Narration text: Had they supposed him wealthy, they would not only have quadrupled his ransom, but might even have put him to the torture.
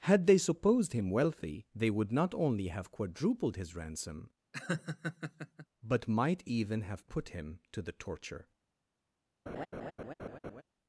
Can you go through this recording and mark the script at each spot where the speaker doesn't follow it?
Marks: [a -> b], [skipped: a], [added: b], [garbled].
Had they supposed him wealthy, they would not only have quadrupled his ransom, but might even have put him to the torture.